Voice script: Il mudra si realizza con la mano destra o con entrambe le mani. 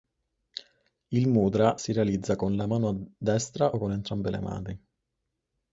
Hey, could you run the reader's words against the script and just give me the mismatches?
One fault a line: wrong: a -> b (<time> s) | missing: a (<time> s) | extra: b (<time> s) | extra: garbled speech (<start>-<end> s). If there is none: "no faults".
no faults